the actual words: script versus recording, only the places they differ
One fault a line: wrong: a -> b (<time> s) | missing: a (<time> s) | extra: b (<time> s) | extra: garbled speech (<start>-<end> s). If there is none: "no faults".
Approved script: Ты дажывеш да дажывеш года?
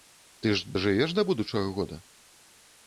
extra: ж (0.6 s)
wrong: дажывеш -> будучага (1.3 s)